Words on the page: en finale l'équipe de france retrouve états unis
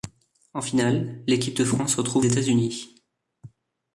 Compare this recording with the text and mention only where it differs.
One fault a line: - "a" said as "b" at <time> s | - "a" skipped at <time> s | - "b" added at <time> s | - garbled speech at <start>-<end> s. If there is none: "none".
none